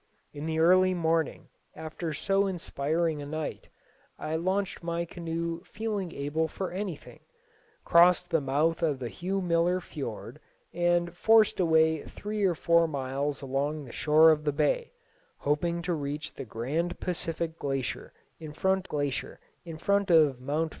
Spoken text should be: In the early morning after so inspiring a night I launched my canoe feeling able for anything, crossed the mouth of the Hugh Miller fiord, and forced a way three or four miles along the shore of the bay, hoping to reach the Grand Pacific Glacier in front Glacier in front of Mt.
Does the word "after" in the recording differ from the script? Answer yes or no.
no